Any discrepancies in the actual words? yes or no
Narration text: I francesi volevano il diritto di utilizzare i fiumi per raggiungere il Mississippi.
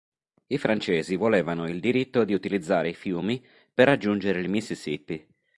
no